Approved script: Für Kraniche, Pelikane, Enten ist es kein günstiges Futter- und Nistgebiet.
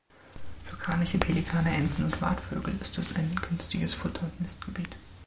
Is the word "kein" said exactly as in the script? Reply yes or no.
no